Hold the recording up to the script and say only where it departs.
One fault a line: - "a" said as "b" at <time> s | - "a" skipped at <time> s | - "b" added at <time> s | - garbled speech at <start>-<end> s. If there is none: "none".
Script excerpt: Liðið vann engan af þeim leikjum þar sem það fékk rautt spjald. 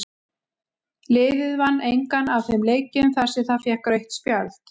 none